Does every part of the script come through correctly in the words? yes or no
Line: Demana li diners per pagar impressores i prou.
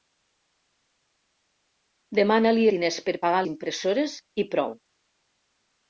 yes